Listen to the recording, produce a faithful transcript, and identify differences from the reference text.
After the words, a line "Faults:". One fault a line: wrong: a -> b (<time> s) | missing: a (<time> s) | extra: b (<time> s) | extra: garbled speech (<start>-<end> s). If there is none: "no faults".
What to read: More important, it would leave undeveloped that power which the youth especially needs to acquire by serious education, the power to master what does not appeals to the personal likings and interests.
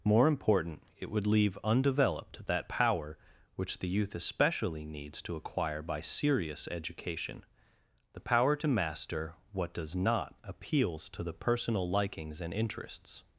More important, it would leave undeveloped that power which the youth especially needs to acquire by serious education, the power to master what does not appeals to the personal likings and interests.
Faults:
no faults